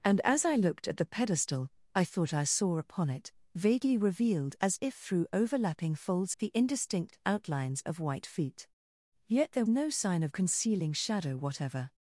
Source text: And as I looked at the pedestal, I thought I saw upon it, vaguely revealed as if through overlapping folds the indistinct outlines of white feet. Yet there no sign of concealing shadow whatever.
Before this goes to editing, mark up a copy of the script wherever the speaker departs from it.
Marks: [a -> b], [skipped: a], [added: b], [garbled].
And as I looked at the pedestal, I thought I saw upon it, vaguely revealed as if through overlapping folds the indistinct outlines of white feet. Yet there no sign of concealing shadow whatever.